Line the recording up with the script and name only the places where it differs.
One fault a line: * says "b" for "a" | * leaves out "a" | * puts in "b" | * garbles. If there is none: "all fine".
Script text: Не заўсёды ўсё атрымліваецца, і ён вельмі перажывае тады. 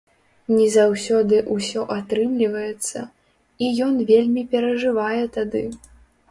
all fine